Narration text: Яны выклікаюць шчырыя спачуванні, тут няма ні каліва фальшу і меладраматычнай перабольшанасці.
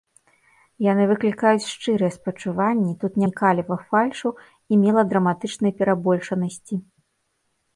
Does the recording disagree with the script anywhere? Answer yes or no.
yes